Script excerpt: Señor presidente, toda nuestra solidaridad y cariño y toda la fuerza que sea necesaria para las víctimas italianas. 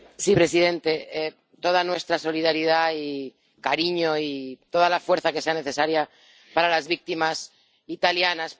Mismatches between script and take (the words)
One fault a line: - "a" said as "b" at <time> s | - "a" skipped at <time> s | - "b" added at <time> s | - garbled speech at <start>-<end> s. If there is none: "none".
none